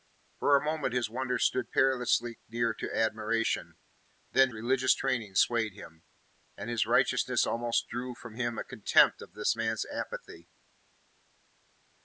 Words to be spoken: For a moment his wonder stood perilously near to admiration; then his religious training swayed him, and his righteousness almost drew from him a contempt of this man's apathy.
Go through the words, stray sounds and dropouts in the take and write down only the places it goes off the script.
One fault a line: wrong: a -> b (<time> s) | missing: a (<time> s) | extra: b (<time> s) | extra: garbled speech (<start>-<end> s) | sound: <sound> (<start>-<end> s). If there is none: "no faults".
missing: his (4.5 s)